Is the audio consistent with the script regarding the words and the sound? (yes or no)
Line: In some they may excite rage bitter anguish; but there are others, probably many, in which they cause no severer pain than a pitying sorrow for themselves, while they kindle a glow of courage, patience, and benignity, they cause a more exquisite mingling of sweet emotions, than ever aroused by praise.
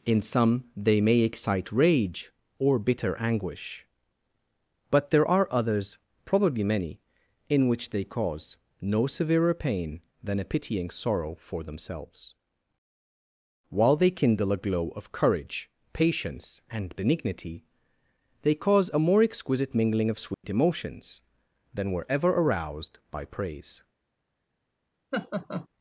no